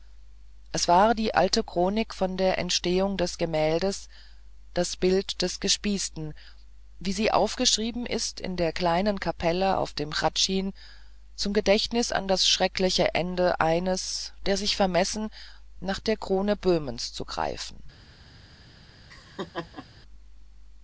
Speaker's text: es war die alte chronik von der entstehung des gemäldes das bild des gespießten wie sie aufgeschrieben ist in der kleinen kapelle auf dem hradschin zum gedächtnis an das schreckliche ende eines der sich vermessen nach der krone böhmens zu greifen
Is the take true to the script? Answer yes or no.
yes